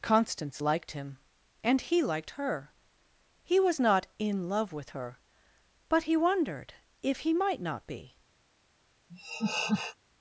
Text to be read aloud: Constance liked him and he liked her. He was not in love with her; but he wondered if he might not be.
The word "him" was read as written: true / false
true